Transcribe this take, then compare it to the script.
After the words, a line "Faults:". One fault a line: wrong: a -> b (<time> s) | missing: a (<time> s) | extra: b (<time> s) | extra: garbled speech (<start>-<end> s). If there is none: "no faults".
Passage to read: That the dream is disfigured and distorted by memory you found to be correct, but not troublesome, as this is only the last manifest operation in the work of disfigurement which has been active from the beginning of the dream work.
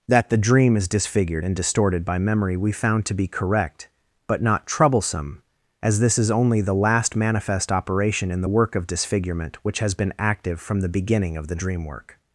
That the dream is disfigured and distorted by memory we found to be correct, but not troublesome, as this is only the last manifest operation in the work of disfigurement which has been active from the beginning of the dream work.
Faults:
wrong: you -> we (2.6 s)